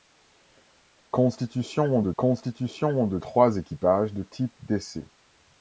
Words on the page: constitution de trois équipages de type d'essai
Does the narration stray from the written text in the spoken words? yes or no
yes